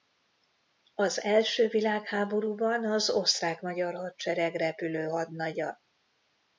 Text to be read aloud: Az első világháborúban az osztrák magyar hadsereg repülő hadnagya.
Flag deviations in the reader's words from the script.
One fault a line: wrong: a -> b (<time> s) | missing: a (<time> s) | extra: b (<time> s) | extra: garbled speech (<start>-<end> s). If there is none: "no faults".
no faults